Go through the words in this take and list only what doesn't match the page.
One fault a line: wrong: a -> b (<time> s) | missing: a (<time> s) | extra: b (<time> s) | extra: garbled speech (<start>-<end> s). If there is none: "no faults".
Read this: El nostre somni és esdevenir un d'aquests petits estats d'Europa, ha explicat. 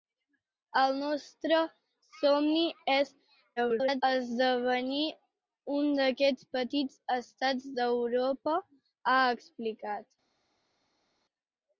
extra: garbled speech (3.6-4.0 s)